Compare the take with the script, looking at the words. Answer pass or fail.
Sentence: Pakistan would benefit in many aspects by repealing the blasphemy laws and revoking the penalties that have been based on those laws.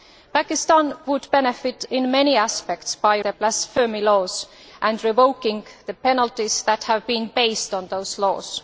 fail